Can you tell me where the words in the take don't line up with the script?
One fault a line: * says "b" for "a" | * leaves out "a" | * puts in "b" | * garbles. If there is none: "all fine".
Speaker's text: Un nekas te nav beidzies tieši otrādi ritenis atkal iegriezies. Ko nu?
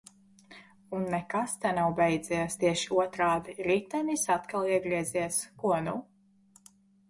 all fine